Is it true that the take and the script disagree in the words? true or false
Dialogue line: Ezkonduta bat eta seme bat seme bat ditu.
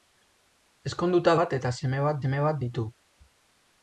false